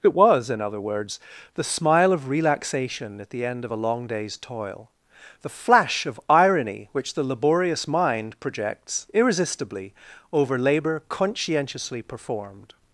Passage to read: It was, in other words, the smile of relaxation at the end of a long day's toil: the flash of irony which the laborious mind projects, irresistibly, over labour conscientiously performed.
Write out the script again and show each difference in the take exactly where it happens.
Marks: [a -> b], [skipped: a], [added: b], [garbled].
It was, in other words, the smile of relaxation at the end of a long day's toil: the flash of irony which the laborious mind projects, irresistibly, over labour conscientiously performed.